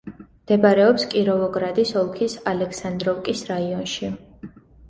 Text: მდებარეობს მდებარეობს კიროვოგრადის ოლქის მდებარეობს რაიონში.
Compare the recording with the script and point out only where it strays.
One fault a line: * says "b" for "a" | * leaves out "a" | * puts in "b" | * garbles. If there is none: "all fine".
* leaves out "მდებარეობს"
* says "ალექსანდროვკის" for "მდებარეობს"